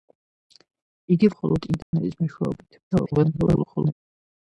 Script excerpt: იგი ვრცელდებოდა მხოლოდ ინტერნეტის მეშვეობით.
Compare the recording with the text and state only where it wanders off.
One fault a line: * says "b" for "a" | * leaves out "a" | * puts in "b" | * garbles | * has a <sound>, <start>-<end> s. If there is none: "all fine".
* leaves out "ვრცელდებოდა"
* has a dropout, 1.8-1.9 s
* garbles